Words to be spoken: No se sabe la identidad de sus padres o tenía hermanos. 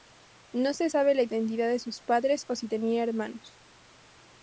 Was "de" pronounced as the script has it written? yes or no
yes